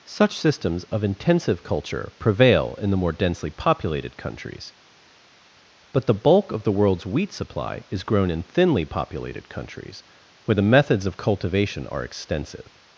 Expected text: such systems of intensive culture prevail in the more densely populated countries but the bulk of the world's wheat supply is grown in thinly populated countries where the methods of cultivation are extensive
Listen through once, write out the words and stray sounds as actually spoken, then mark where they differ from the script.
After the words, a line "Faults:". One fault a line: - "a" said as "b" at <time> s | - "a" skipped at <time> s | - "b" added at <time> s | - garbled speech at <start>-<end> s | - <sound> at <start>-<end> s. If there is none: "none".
such systems of intensive culture prevail in the more densely populated countries but the bulk of the world's wheat supply is grown in thinly populated countries where the methods of cultivation are extensive
Faults:
none